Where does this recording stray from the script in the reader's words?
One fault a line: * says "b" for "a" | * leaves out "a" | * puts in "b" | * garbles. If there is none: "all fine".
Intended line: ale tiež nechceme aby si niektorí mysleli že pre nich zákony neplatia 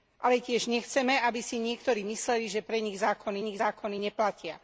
* puts in "nich zákony"